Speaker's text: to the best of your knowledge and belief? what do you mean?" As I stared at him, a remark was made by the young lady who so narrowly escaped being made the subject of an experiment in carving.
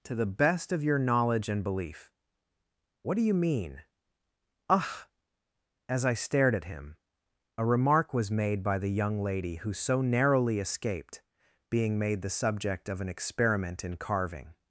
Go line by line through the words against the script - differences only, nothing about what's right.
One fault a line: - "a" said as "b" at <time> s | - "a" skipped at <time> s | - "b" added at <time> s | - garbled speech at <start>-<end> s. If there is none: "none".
- "ugh" added at 4.7 s